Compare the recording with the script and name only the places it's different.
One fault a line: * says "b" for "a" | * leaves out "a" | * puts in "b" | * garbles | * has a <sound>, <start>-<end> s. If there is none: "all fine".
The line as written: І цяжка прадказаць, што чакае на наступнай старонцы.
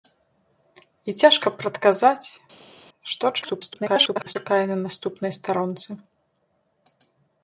* garbles